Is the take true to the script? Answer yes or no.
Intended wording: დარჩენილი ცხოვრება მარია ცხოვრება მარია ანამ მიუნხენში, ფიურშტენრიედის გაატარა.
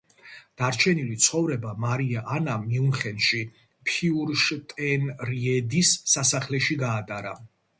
no